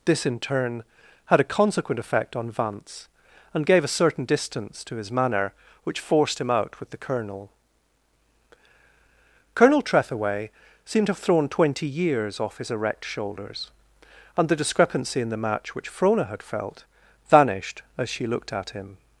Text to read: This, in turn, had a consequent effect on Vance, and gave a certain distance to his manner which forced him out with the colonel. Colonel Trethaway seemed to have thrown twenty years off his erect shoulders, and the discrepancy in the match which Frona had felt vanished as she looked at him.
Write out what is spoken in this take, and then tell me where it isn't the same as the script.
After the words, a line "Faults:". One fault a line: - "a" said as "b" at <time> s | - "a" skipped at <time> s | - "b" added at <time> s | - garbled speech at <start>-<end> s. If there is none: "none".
This, in turn, had a consequent effect on Vance, and gave a certain distance to his manner which forced him out with the colonel. Colonel Trethaway seemed to have thrown twenty years off his erect shoulders, and the discrepancy in the match which Frona had felt vanished as she looked at him.
Faults:
none